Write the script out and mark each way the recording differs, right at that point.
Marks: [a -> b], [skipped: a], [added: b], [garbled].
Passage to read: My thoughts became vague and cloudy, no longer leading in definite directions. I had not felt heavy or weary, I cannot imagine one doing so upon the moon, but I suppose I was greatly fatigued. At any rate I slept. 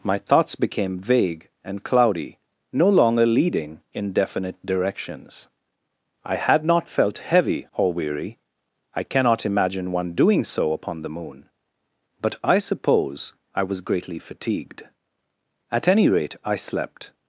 My thoughts became vague and cloudy, no longer leading in definite directions. I had not felt heavy or weary, I cannot imagine one doing so upon the moon, but I suppose I was greatly fatigued. At any rate I slept.